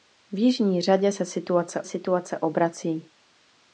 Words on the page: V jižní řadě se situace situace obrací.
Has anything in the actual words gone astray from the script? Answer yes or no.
no